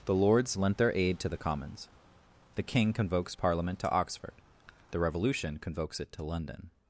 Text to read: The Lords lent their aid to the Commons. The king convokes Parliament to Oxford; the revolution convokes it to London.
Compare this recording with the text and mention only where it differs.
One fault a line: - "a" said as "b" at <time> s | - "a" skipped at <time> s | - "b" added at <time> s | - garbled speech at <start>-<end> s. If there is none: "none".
none